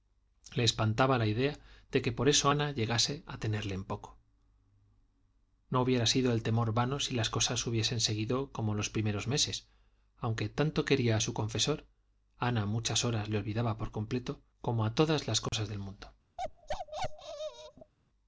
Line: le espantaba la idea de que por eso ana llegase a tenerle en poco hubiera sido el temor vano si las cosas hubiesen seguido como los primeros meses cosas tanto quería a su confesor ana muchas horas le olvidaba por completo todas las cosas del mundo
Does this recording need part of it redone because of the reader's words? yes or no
yes